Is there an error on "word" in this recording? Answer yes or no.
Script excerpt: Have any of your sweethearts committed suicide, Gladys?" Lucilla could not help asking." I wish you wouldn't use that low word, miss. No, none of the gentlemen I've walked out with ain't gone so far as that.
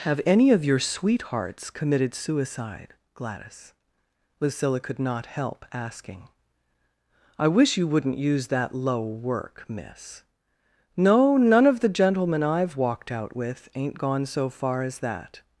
yes